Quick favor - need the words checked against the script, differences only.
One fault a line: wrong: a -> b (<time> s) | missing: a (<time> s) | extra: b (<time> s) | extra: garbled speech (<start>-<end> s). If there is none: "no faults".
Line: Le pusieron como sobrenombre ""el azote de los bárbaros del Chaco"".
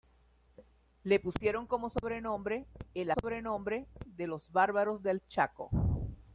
wrong: azote -> sobrenombre (3.1 s)